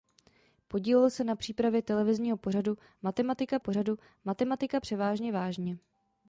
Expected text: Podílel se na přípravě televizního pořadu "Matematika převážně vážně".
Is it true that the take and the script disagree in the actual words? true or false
true